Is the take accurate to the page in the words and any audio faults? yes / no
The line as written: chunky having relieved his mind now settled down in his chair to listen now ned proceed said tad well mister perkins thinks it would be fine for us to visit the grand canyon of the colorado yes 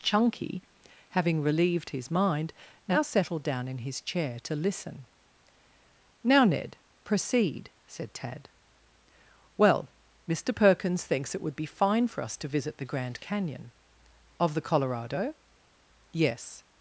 yes